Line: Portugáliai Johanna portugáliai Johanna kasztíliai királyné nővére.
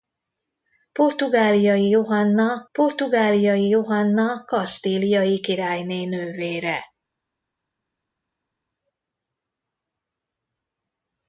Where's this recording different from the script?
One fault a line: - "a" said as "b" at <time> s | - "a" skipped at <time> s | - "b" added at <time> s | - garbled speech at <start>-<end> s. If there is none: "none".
none